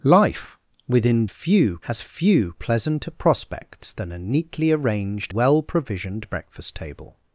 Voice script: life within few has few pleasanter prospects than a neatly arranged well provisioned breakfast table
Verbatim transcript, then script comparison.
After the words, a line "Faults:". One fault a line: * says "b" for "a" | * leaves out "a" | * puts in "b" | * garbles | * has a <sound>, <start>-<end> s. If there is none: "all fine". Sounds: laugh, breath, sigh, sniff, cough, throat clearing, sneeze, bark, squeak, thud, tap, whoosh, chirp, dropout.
life within few has few pleasanter prospects than a neatly arranged well provisioned breakfast table
Faults:
all fine